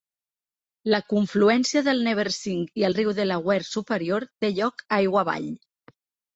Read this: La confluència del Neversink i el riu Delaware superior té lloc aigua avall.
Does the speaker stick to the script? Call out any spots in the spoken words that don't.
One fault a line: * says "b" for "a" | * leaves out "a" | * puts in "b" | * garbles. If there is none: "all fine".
all fine